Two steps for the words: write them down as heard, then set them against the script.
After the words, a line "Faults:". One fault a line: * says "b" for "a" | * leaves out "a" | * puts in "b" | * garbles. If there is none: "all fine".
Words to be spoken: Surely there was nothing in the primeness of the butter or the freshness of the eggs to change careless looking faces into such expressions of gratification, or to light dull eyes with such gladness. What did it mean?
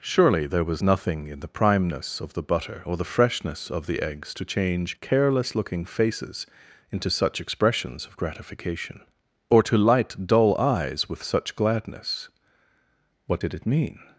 Surely there was nothing in the primeness of the butter or the freshness of the eggs to change careless looking faces into such expressions of gratification, or to light dull eyes with such gladness. What did it mean?
Faults:
all fine